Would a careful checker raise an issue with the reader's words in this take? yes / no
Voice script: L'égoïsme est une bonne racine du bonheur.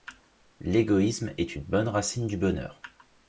no